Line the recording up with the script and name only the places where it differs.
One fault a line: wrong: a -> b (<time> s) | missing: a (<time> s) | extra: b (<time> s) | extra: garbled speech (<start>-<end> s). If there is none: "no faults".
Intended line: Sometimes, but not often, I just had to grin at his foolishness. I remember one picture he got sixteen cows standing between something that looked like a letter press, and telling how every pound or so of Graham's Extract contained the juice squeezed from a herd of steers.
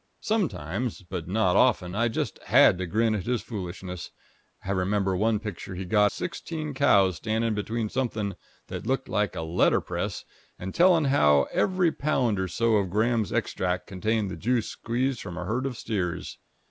no faults